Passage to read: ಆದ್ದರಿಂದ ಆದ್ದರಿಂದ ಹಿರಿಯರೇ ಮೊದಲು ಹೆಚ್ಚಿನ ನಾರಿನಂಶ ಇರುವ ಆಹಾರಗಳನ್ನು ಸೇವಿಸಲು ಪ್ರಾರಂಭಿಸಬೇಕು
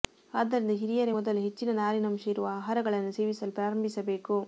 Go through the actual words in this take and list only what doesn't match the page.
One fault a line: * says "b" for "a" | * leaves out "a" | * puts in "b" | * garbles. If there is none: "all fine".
* leaves out "ಆದ್ದರಿಂದ"